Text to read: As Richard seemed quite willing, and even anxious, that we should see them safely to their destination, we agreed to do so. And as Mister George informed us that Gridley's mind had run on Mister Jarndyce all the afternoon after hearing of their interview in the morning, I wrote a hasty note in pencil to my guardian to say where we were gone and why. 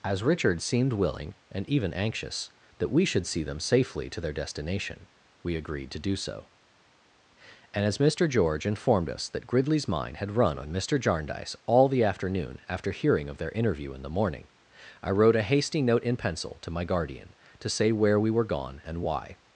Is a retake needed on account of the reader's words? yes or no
yes